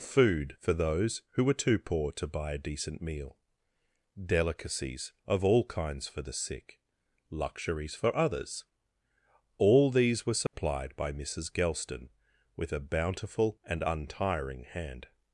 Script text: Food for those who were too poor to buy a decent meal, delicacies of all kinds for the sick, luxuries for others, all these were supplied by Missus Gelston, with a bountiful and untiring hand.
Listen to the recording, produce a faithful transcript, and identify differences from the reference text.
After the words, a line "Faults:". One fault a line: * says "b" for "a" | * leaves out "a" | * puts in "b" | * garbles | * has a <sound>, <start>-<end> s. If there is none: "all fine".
Food for those who were too poor to buy a decent meal, delicacies of all kinds for the sick, luxuries for others, all these were supplied by Missus Gelston, with a bountiful and untiring hand.
Faults:
* has a dropout, 10.5-10.5 s